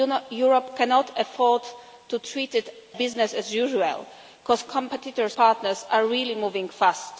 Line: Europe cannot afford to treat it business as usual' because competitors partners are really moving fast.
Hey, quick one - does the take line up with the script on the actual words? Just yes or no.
yes